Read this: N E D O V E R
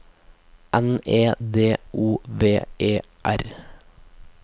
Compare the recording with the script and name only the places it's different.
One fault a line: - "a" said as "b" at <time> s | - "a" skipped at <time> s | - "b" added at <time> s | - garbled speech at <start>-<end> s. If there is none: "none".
none